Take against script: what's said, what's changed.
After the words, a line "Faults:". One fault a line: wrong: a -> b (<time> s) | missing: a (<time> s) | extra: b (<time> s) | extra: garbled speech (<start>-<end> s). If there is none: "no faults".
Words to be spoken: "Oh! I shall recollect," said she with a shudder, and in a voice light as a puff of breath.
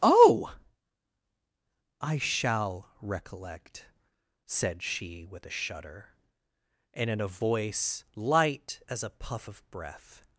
"Oh! I shall recollect," said she with a shudder, and in a voice light as a puff of breath.
Faults:
no faults